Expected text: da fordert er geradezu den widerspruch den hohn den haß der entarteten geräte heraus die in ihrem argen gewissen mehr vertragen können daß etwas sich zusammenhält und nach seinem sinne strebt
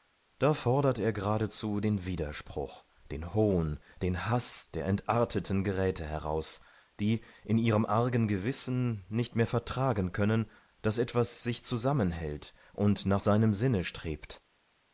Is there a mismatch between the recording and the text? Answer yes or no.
yes